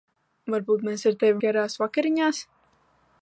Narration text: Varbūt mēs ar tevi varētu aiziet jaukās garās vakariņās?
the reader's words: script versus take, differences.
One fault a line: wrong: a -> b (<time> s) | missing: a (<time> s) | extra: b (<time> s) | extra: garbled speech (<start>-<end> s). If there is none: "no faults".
missing: varētu aiziet jaukās (1.4 s)